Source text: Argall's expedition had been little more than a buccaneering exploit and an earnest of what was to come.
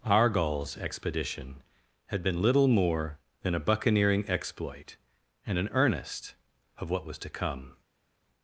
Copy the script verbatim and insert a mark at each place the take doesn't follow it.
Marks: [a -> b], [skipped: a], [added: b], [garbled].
Argall's expedition had been little more than a buccaneering exploit and an earnest of what was to come.